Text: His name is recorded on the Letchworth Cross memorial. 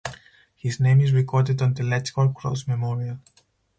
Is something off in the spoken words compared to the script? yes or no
no